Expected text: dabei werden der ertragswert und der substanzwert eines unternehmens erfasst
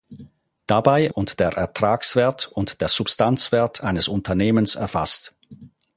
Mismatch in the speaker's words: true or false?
true